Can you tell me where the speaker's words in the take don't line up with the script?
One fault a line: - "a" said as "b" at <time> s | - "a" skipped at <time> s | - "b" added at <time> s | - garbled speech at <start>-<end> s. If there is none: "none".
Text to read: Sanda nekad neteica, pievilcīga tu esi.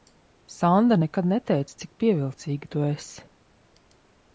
- "cik" added at 1.8 s